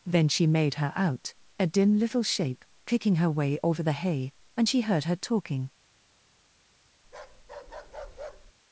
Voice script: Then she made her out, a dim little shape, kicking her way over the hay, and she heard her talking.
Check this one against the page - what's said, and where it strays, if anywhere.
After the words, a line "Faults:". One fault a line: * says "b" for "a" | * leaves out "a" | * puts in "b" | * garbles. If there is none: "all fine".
Then she made her out, a dim little shape, kicking her way over the hay, and she heard her talking.
Faults:
all fine